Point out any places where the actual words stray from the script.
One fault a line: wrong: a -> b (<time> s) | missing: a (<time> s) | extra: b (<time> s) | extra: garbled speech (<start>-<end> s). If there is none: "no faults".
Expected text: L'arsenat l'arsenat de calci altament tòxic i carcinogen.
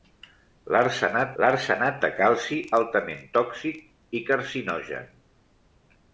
no faults